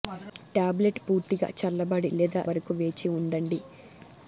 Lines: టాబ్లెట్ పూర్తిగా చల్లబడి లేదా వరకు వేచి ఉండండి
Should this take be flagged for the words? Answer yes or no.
no